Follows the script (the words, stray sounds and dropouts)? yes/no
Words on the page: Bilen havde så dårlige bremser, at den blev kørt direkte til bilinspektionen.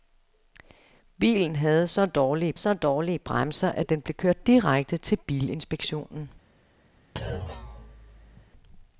no